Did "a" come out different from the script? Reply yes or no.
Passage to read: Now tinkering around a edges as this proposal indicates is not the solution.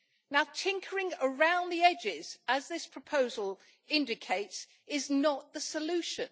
yes